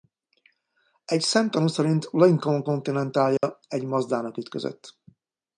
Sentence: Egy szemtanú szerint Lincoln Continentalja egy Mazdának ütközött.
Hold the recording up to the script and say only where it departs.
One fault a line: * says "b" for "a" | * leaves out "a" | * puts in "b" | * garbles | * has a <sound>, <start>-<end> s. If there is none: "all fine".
* has a dropout, 3.4-3.4 s